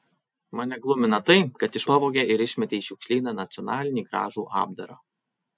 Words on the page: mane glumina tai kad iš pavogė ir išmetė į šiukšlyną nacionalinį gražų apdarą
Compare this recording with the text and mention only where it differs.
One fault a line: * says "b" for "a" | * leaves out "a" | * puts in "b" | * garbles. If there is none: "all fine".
all fine